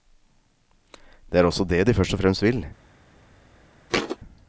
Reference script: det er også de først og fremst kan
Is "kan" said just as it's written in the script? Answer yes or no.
no